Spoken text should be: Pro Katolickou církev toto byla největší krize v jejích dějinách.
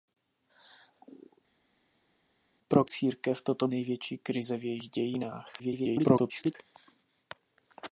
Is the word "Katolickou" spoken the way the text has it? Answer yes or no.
no